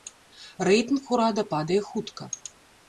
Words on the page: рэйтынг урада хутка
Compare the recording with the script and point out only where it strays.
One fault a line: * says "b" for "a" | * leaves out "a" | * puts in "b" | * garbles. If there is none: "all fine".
* puts in "падае"